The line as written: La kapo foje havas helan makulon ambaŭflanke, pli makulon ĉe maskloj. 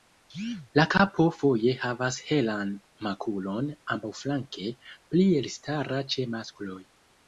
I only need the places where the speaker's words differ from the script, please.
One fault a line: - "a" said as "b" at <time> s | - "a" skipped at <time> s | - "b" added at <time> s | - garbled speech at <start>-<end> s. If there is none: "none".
- "makulon" said as "elstara" at 5.4 s